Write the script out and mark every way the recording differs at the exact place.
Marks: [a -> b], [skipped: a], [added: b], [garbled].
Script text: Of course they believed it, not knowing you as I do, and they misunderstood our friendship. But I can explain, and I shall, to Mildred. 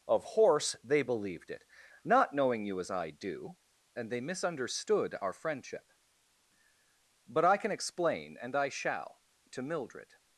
Of [course -> horse] they believed it, not knowing you as I do, and they misunderstood our friendship. But I can explain, and I shall, to Mildred.